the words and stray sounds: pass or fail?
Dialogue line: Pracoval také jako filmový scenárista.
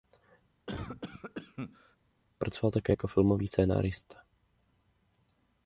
fail